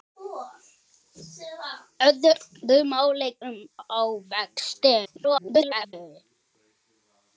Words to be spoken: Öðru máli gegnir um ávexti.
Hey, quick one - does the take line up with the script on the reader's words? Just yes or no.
no